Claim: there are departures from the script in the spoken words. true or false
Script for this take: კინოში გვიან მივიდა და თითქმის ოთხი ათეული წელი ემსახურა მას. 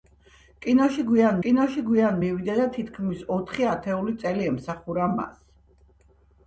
true